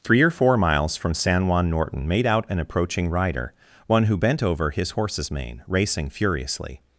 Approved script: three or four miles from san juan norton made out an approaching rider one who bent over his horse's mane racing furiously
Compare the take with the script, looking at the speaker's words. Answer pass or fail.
pass